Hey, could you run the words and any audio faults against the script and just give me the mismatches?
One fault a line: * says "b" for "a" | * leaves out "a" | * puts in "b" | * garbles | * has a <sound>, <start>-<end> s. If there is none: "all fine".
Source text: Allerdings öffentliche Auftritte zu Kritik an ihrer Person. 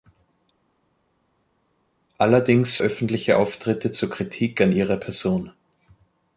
all fine